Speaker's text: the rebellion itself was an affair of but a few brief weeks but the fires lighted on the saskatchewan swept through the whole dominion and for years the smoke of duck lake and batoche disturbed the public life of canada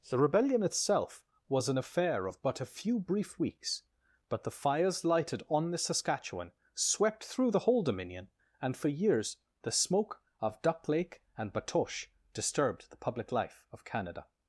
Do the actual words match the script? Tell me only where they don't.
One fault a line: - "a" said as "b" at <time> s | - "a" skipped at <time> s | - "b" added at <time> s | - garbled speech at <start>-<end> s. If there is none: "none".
none